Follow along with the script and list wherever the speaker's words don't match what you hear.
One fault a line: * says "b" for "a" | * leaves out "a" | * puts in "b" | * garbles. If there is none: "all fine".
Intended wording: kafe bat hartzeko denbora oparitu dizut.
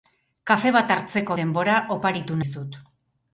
all fine